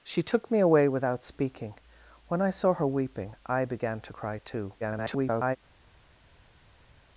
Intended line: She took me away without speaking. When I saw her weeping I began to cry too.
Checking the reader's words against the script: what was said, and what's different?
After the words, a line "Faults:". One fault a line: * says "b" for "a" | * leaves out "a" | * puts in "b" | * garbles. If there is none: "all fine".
She took me away without speaking. When I saw her weeping I began to cry too. [garbled]
Faults:
* garbles